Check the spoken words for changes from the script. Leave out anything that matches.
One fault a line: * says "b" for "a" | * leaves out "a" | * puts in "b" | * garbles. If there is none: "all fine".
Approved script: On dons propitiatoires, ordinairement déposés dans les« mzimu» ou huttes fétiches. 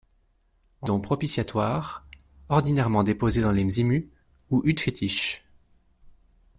all fine